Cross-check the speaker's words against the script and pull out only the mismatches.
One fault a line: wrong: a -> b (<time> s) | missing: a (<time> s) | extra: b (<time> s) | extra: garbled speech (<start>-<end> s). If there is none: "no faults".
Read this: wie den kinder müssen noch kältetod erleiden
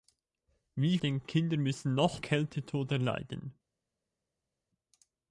no faults